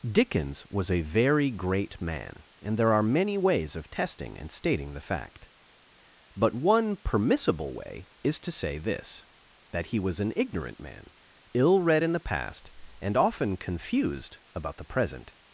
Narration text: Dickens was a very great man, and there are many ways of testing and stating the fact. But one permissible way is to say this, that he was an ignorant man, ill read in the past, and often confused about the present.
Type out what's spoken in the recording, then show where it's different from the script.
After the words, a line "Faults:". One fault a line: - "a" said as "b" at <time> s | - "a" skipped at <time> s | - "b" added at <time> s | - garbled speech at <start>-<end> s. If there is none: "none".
Dickens was a very great man, and there are many ways of testing and stating the fact. But one permissible way is to say this, that he was an ignorant man, ill read in the past, and often confused about the present.
Faults:
none